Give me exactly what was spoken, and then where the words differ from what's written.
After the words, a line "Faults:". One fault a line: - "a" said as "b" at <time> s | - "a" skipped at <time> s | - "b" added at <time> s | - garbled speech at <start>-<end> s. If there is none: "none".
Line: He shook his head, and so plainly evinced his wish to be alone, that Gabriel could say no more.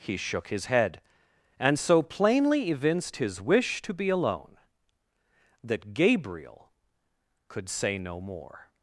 He shook his head, and so plainly evinced his wish to be alone, that Gabriel could say no more.
Faults:
none